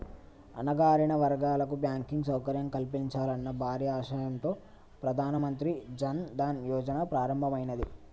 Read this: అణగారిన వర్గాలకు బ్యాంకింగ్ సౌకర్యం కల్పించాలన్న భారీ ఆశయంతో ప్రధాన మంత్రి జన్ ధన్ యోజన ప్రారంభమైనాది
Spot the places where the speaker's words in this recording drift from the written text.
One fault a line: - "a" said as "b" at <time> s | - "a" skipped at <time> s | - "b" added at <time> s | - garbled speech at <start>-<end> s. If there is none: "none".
none